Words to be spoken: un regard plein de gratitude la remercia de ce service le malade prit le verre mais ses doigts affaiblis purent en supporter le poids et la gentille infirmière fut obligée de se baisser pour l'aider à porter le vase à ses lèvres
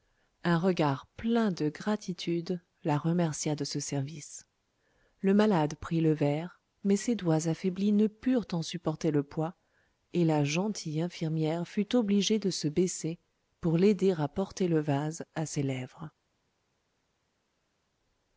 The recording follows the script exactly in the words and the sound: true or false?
false